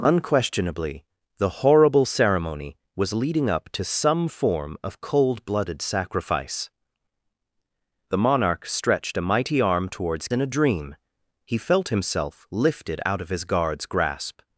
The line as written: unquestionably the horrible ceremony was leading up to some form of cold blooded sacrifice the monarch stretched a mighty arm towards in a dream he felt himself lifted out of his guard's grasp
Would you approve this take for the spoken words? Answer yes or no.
yes